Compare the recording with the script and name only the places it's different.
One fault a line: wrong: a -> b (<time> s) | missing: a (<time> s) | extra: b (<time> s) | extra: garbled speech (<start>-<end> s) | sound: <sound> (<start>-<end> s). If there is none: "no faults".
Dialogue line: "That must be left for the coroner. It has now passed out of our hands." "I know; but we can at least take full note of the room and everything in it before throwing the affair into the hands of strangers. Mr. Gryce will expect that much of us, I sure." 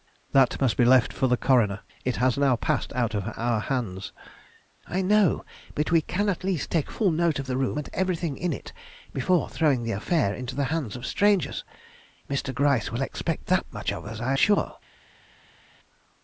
no faults